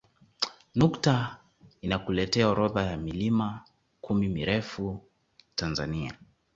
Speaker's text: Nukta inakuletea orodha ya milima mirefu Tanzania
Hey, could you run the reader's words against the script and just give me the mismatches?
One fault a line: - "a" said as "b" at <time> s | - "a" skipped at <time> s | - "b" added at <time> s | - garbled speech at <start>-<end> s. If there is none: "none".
- "kumi" added at 4.0 s